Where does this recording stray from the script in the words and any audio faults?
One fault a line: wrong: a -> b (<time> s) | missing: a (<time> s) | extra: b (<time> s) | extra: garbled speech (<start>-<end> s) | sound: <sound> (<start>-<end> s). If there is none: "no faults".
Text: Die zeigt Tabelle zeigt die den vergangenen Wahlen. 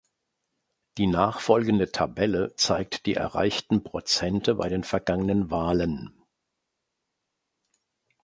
wrong: zeigt -> nachfolgende (1.1 s)
extra: erreichten Prozente bei (3.1 s)